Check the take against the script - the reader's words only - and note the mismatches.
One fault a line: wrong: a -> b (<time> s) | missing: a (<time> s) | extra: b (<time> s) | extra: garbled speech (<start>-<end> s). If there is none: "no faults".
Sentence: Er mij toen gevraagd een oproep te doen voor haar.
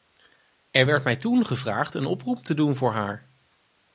extra: werd (0.8 s)